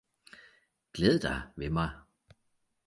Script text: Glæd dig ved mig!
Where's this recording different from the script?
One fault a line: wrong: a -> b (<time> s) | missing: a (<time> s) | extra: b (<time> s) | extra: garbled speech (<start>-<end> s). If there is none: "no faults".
no faults